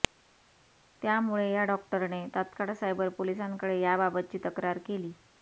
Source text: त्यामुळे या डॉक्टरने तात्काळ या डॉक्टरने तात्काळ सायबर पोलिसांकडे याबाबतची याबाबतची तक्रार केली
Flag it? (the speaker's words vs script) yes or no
yes